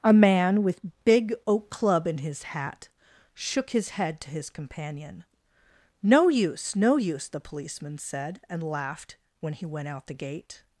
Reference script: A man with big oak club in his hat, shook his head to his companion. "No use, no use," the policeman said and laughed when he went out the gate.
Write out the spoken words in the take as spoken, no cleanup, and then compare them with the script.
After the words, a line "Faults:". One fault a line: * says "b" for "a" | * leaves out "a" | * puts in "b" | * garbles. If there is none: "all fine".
A man with big oak club in his hat, shook his head to his companion. "No use, no use," the policeman said and laughed when he went out the gate.
Faults:
all fine